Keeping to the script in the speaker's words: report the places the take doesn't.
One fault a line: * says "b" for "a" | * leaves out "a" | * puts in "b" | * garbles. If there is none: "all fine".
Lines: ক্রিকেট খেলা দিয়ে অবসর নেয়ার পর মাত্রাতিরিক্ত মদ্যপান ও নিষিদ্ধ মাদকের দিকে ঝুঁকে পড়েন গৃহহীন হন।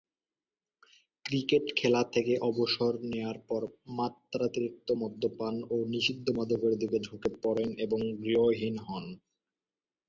* says "থেকে" for "দিয়ে"
* puts in "এবং"